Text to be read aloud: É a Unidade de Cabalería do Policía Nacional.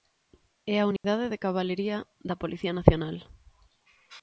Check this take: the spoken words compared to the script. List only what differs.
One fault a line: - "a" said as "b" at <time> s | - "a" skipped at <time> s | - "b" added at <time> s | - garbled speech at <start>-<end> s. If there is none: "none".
- "do" said as "da" at 2.3 s